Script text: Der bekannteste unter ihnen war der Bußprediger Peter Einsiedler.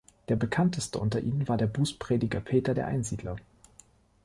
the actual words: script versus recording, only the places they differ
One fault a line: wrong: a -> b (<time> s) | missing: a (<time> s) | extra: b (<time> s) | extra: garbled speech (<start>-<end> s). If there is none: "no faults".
extra: der (2.7 s)